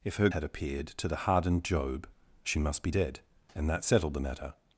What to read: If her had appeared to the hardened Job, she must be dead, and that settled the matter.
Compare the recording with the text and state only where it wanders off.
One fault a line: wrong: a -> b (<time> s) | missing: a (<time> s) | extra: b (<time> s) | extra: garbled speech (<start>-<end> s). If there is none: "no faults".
no faults